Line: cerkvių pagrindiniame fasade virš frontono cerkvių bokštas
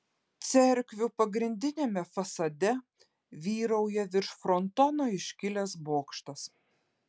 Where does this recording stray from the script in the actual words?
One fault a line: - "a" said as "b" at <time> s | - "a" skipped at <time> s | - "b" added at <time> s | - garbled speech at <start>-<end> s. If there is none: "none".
- "vyrauja" added at 3.5 s
- "cerkvių" said as "iškilęs" at 5.2 s